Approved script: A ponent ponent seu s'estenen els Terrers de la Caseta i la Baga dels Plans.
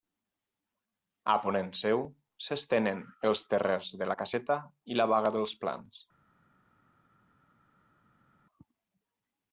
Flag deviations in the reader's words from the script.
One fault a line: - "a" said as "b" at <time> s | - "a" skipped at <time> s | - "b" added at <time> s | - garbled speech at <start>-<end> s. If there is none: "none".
- "ponent" skipped at 1.7 s